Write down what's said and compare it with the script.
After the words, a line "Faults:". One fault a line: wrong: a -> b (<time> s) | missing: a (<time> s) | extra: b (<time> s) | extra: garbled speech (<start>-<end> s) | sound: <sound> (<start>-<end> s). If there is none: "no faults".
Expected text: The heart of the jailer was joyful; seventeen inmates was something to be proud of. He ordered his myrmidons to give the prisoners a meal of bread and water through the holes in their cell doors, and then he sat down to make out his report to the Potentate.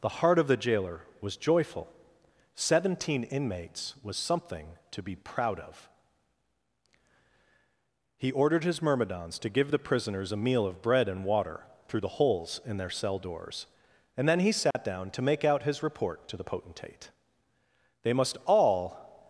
The heart of the jailer was joyful; seventeen inmates was something to be proud of. He ordered his myrmidons to give the prisoners a meal of bread and water through the holes in their cell doors, and then he sat down to make out his report to the Potentate. "They must all
Faults:
sound: dropout (14.7-14.7 s)
extra: They must all (18.0 s)